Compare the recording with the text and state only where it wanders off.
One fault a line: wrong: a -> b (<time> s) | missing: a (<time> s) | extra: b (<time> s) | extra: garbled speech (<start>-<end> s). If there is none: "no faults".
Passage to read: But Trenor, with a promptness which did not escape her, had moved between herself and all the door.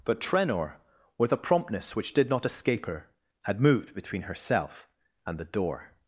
missing: all (5.4 s)